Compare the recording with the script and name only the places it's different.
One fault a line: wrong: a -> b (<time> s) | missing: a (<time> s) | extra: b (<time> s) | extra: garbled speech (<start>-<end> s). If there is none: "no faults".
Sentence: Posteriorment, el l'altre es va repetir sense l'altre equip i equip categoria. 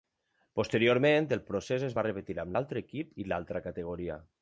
wrong: l'altre -> procés (1.5 s)
wrong: sense -> amb (2.5 s)
wrong: equip -> l'altra (3.3 s)